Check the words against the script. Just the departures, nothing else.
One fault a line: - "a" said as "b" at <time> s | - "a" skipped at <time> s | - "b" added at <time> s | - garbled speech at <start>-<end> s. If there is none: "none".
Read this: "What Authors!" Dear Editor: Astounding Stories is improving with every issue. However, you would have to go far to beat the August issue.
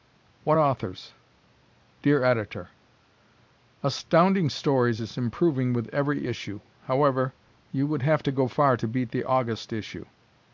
none